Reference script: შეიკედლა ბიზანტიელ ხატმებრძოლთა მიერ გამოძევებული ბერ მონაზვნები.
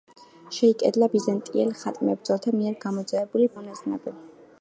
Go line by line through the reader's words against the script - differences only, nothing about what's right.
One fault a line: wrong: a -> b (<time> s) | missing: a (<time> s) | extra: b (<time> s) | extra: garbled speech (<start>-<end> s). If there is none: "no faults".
missing: ბერ (3.5 s)